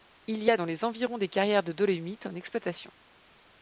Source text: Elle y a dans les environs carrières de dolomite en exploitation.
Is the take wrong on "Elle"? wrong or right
wrong